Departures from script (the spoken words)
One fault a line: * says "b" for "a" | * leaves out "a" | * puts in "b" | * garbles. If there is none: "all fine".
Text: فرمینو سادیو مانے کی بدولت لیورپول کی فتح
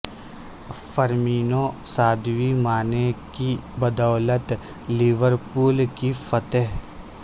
all fine